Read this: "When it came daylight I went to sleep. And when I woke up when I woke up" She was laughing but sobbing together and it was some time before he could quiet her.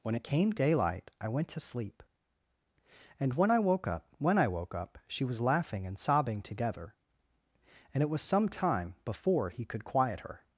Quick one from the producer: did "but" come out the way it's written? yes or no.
no